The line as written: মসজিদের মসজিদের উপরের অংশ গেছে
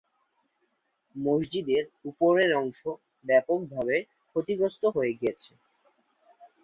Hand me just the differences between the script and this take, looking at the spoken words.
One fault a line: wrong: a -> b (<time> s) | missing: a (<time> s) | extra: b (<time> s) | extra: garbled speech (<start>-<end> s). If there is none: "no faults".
missing: মসজিদের (1.8 s)
extra: ব্যাপকভাবে ক্ষতিগ্রস্ত হয়ে (3.3 s)